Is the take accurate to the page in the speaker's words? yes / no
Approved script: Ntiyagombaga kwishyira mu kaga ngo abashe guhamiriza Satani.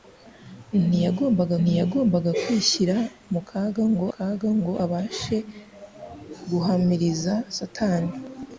no